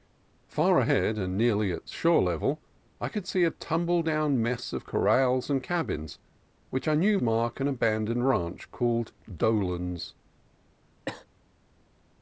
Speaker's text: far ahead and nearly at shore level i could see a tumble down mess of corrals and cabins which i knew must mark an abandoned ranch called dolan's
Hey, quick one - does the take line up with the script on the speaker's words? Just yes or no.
no